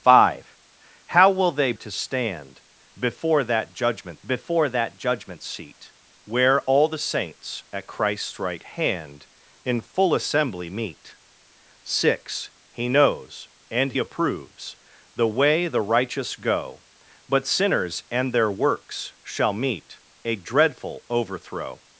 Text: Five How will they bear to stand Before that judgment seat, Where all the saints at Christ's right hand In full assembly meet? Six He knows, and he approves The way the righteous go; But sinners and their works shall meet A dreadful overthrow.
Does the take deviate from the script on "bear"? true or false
true